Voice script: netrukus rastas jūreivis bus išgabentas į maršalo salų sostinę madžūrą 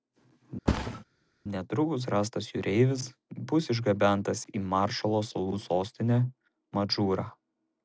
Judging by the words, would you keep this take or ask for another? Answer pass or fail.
pass